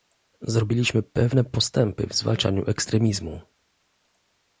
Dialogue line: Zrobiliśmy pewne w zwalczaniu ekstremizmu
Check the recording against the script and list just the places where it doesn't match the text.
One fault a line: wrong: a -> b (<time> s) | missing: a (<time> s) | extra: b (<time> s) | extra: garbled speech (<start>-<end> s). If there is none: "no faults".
extra: postępy (1.4 s)